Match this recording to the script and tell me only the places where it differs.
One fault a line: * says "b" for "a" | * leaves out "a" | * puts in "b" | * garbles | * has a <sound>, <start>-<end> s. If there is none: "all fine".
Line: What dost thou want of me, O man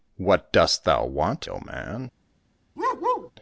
* leaves out "of me"
* has a bark, 2.8-3.3 s